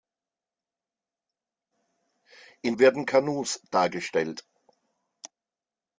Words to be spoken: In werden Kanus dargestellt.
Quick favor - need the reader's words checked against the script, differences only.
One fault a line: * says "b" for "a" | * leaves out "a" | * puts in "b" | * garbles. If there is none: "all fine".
all fine